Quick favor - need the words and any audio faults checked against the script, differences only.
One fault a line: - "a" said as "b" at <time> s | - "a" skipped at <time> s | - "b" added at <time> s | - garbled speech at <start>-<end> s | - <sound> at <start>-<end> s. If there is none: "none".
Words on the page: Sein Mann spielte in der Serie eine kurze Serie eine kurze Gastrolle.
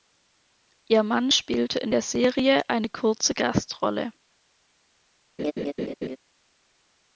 - "Sein" said as "Ihr" at 0.9 s
- "Serie eine kurze" skipped at 3.3 s
- laugh at 5.4-6.2 s